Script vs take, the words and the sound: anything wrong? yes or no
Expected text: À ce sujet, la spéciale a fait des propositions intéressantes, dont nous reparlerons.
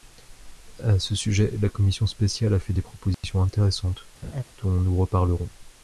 yes